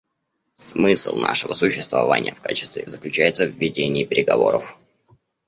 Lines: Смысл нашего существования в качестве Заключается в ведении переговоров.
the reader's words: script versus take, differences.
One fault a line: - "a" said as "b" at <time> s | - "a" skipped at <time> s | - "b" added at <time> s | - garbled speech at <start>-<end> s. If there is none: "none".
none